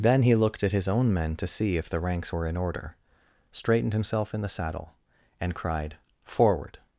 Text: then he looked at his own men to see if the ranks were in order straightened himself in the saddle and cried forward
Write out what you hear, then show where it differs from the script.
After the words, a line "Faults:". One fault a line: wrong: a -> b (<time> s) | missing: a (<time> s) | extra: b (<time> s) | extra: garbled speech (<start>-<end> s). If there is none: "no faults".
then he looked at his own men to see if the ranks were in order straightened himself in the saddle and cried forward
Faults:
no faults